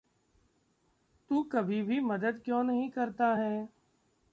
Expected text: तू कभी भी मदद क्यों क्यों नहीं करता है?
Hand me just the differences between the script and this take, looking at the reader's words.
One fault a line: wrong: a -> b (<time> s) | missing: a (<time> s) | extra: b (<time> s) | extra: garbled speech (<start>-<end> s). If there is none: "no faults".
missing: क्यों (2.6 s)